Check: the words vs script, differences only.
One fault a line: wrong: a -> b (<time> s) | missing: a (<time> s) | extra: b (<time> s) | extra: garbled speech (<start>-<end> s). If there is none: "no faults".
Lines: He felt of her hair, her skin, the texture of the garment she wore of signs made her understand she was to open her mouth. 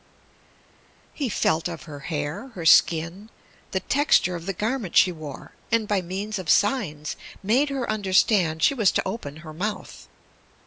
extra: and by means (5.7 s)